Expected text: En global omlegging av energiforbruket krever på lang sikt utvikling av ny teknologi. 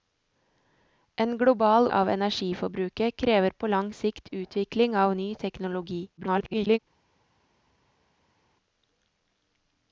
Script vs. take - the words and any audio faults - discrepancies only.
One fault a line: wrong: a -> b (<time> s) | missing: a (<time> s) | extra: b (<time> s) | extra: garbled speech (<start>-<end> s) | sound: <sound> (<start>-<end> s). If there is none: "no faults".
missing: omlegging (1.9 s)
extra: garbled speech (6.2-6.8 s)